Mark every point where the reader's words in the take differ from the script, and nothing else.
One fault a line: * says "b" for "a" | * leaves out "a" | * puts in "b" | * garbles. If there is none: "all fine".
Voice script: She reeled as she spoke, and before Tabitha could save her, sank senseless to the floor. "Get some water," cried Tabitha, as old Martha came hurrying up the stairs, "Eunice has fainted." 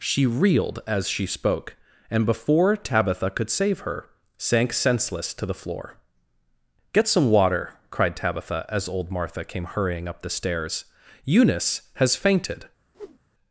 all fine